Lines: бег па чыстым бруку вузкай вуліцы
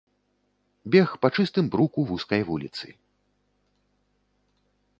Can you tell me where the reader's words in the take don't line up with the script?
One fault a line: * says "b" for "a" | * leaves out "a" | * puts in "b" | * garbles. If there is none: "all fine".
all fine